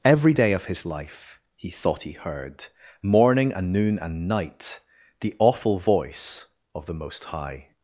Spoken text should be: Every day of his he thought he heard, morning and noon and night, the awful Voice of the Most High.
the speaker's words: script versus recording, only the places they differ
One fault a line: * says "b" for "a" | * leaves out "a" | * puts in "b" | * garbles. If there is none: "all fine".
* puts in "life"